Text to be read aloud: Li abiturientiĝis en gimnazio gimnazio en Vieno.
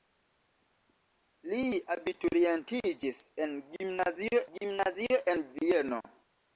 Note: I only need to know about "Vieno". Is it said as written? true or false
true